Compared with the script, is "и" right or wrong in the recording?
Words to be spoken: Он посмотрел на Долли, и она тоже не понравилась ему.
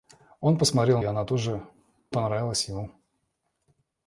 wrong